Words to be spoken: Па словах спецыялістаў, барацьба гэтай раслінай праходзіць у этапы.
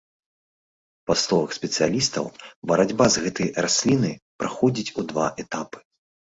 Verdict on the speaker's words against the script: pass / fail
fail